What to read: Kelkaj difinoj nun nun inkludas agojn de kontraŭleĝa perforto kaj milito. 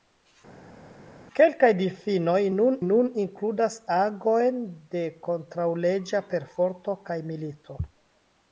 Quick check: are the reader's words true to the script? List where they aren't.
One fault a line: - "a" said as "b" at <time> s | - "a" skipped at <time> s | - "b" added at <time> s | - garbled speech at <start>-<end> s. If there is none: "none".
none